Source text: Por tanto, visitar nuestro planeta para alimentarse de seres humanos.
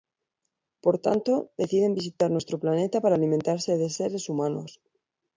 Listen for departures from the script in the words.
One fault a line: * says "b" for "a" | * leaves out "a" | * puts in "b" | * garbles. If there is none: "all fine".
* puts in "deciden"